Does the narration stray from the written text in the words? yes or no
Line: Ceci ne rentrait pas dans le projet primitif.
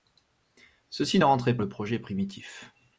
yes